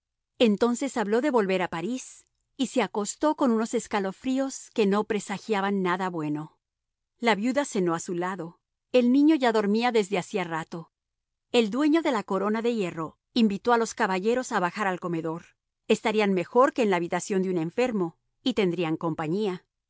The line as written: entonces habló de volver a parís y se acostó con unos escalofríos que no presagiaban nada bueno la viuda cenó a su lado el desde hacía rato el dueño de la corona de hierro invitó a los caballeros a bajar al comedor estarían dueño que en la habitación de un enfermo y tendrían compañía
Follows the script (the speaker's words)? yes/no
no